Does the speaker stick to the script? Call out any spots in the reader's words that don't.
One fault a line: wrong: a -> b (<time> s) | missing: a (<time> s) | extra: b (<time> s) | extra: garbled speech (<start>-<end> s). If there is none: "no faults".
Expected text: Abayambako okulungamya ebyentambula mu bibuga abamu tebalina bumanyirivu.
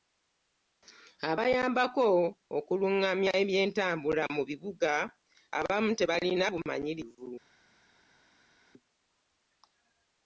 no faults